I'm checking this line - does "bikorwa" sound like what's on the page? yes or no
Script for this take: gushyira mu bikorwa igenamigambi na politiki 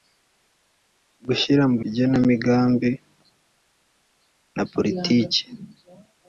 no